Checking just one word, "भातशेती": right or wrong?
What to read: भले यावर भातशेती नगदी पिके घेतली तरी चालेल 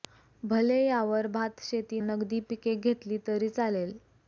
right